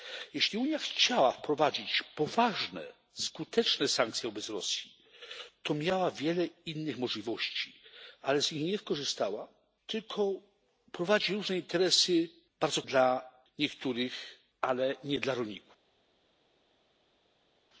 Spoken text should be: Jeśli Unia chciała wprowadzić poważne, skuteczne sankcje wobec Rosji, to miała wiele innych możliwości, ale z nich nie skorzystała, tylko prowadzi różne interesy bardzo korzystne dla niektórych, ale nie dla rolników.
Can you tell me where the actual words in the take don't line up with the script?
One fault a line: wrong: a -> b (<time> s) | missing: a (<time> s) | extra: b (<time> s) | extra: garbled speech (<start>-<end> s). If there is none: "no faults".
missing: korzystne (12.8 s)